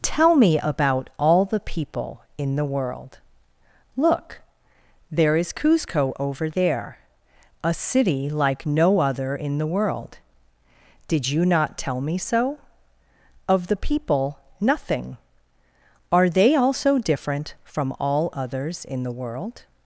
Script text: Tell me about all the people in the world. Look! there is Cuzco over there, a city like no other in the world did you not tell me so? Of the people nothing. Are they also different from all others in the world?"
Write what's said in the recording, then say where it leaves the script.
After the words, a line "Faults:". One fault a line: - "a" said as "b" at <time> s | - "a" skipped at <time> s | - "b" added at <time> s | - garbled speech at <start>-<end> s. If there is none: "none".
Tell me about all the people in the world. Look! there is Cuzco over there, a city like no other in the world did you not tell me so? Of the people nothing. Are they also different from all others in the world?"
Faults:
none